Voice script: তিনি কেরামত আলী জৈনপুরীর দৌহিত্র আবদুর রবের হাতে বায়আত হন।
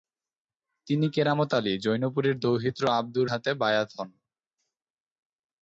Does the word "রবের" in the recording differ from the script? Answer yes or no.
yes